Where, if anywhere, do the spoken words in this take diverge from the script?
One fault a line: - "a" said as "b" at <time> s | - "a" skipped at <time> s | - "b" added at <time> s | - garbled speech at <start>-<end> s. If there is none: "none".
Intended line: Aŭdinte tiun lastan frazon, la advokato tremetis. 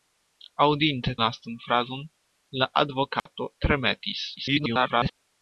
- "tiun" skipped at 1.1 s
- garbled speech at 4.4-5.1 s